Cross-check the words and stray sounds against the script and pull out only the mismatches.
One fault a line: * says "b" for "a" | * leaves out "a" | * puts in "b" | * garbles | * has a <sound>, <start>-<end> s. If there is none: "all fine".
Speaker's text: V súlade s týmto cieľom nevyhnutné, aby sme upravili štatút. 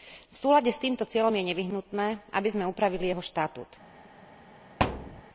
* puts in "je"
* puts in "jeho"
* has a thud, 4.8-5.2 s